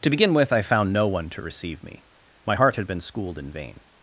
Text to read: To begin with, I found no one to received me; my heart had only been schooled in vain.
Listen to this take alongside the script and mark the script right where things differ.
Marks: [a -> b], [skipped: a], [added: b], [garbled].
To begin with, I found no one to [received -> receive] me; my heart had [skipped: only] been schooled in vain.